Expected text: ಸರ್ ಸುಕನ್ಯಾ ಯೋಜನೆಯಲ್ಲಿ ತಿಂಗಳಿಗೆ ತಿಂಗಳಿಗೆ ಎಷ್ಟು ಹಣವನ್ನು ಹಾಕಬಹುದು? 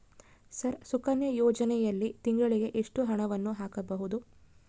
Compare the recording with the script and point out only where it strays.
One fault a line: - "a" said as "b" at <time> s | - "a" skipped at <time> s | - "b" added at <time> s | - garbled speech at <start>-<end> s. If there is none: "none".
- "ತಿಂಗಳಿಗೆ" skipped at 2.7 s